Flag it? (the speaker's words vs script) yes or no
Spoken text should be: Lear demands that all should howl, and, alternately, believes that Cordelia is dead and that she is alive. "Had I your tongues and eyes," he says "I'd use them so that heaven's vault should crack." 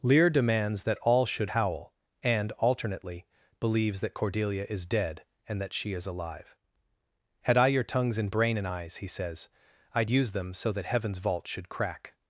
yes